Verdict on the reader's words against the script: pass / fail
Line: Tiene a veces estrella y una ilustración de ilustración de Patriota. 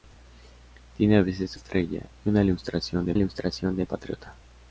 pass